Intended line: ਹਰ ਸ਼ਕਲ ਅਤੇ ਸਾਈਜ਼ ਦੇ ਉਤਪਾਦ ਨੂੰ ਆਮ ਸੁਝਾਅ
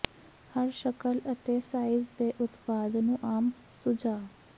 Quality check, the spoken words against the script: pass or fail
pass